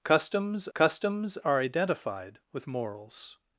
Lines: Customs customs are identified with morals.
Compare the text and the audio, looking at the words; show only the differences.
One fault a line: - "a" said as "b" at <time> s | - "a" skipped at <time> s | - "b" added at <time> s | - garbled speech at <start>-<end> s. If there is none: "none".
none